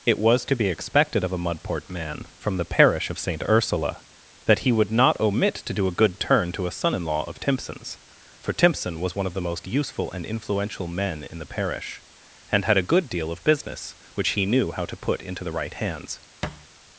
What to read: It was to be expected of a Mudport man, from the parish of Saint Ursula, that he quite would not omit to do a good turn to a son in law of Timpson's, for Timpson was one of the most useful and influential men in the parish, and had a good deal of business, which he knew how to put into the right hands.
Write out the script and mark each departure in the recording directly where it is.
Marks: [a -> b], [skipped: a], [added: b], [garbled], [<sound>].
It was to be expected of a Mudport man, from the parish of Saint Ursula, that he [skipped: quite] would not omit to do a good turn to a son in law of Timpson's, for Timpson was one of the most useful and influential men in the parish, and had a good deal of business, which he knew how to put into the right hands. [thud]